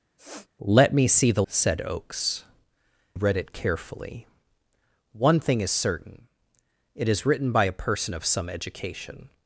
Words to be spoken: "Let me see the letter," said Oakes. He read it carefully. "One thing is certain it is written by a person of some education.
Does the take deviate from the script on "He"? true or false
true